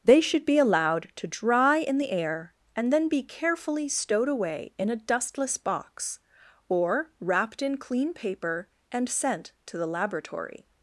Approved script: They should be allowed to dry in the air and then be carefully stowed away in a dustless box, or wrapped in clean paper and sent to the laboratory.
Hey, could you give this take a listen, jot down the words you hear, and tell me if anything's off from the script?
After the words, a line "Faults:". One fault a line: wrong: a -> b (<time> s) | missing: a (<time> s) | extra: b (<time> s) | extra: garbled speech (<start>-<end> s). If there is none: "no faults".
They should be allowed to dry in the air and then be carefully stowed away in a dustless box, or wrapped in clean paper and sent to the laboratory.
Faults:
no faults